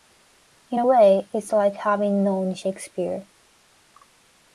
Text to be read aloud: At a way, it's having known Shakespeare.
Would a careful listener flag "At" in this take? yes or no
yes